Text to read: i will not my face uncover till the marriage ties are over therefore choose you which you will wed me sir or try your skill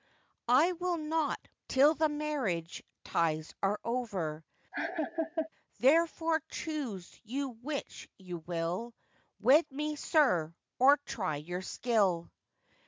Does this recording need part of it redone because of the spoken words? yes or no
yes